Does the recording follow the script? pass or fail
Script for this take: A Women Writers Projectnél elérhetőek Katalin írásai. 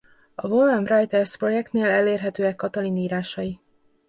pass